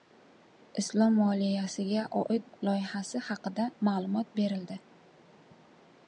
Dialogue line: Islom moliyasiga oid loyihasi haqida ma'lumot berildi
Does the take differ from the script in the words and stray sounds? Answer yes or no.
no